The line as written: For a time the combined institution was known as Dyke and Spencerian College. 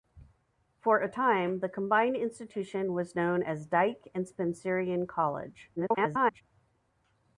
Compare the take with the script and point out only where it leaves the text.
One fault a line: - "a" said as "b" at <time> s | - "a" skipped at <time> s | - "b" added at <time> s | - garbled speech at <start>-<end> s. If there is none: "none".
- garbled speech at 5.8-6.4 s